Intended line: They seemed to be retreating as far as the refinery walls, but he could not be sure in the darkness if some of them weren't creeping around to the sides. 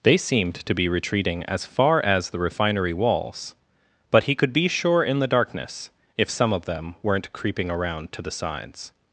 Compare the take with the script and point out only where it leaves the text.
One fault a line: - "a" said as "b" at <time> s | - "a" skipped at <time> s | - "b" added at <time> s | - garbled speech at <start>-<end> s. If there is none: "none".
- "not" skipped at 4.5 s